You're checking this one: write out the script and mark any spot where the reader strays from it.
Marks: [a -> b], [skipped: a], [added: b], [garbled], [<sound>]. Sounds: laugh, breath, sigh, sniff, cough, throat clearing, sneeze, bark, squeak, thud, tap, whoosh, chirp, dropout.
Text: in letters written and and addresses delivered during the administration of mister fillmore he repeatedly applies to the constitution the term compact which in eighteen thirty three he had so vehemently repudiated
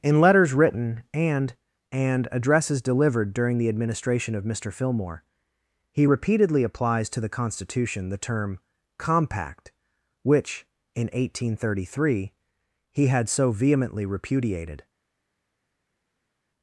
in letters written and and addresses delivered during the administration of mister fillmore he repeatedly applies to the constitution the term compact which in eighteen thirty three he had so vehemently repudiated